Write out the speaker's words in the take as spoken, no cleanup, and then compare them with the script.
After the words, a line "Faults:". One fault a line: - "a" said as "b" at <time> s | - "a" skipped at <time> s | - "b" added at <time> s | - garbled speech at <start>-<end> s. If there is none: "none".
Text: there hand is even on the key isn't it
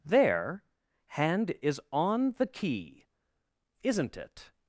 there hand is on the key isn't it
Faults:
- "even" skipped at 1.8 s